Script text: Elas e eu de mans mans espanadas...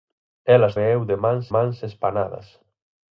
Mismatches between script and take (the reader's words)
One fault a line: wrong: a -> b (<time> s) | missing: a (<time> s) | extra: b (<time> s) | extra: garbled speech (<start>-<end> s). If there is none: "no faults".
no faults